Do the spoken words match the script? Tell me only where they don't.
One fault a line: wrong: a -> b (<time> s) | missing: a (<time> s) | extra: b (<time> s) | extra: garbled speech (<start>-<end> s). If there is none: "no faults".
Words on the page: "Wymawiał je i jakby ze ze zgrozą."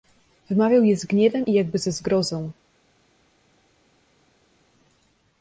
extra: z gniewem (1.0 s)
missing: ze (1.9 s)